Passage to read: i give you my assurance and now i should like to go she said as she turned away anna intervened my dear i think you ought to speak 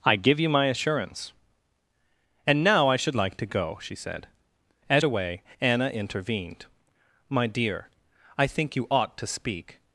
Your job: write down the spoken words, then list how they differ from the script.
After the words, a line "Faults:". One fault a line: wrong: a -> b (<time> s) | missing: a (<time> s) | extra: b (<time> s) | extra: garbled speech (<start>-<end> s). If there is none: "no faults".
i give you my assurance and now i should like to go she said as away anna intervened my dear i think you ought to speak
Faults:
missing: she turned (5.0 s)